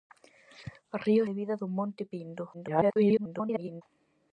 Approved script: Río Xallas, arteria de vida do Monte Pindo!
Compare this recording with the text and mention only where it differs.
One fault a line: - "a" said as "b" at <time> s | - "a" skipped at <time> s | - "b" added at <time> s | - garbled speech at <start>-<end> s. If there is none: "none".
- "Xallas arteria" skipped at 1.2 s
- garbled speech at 2.5-3.8 s